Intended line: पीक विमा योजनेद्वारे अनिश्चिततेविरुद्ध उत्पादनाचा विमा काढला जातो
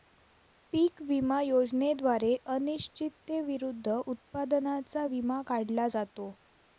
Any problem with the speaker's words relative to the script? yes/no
no